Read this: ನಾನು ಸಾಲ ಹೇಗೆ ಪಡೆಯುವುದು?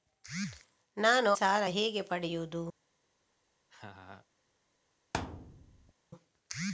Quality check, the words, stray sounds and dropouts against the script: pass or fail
fail